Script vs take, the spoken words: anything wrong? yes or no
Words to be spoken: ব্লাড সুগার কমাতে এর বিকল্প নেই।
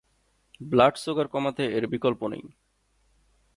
no